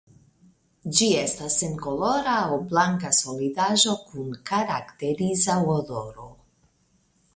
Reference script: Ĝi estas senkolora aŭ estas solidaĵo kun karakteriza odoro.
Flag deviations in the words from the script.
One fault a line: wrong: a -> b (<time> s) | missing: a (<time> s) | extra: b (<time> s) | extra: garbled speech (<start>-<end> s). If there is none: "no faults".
wrong: estas -> blanka (2.7 s)